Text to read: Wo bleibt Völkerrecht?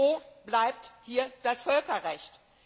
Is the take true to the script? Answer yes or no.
no